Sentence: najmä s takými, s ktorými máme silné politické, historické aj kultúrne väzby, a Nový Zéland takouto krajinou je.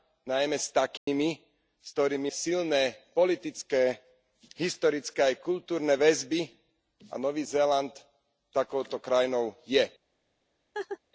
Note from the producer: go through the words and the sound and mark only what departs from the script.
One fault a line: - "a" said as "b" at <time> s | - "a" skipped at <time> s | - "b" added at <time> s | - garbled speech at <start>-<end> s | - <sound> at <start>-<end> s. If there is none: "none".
- dropout at 1.0-1.1 s
- "máme" skipped at 2.3 s
- laugh at 10.7-11.0 s